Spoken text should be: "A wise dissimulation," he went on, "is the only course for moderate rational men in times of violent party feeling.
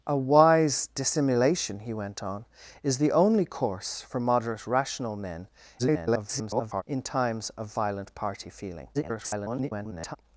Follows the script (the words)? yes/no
no